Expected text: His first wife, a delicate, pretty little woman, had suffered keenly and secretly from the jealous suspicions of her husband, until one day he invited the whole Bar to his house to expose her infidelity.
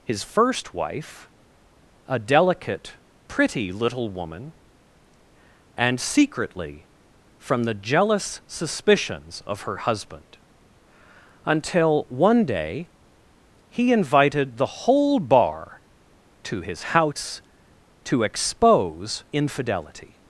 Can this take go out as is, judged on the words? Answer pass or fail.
fail